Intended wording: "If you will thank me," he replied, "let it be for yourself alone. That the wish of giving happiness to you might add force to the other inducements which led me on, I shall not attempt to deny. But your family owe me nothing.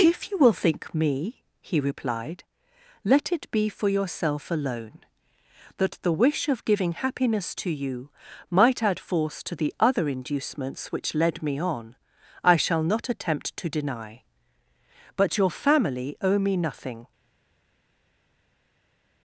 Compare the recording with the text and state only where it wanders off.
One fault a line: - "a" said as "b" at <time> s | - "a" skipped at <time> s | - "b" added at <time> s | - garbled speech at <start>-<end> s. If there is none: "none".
- "thank" said as "think" at 0.5 s